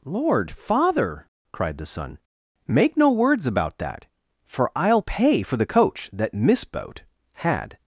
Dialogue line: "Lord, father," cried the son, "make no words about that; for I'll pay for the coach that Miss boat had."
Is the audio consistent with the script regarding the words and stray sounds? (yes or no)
yes